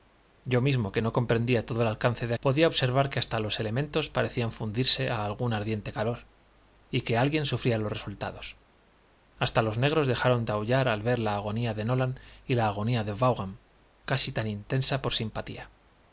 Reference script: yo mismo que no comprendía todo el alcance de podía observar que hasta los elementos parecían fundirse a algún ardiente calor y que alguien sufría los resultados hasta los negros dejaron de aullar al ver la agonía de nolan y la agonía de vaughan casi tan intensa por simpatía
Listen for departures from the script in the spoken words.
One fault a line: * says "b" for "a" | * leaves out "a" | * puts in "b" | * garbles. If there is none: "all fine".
all fine